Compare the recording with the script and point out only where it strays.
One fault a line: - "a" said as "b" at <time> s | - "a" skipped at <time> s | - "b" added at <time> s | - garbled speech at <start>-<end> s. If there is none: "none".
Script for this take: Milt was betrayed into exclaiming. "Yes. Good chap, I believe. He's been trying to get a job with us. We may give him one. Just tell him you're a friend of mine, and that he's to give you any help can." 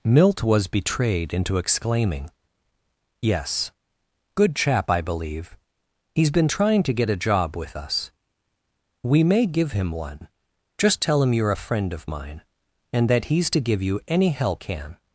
none